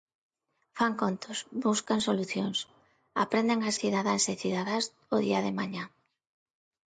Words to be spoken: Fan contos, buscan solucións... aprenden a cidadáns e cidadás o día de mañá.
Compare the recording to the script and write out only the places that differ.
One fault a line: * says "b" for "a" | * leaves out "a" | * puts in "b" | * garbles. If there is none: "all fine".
all fine